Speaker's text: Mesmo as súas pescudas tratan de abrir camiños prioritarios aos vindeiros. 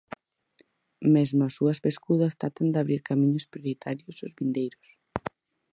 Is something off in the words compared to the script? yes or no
no